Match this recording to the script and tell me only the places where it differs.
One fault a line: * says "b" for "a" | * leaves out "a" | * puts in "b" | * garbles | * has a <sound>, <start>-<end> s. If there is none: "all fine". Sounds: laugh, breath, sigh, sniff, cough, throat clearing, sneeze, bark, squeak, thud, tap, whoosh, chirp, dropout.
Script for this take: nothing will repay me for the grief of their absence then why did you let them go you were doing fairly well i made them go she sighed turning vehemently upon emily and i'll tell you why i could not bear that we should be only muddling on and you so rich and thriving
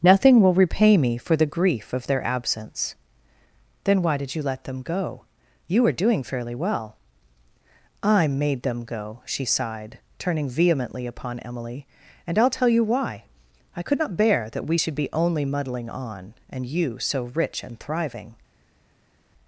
all fine